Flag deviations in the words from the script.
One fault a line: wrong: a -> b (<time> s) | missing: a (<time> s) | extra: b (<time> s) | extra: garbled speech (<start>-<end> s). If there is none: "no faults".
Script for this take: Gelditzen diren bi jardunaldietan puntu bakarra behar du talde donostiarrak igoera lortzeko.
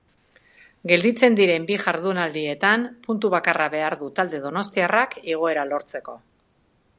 no faults